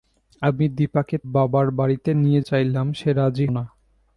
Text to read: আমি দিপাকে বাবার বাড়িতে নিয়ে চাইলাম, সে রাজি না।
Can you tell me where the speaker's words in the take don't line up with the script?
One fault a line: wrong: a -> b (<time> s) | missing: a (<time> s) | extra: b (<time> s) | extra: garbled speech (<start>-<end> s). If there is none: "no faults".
no faults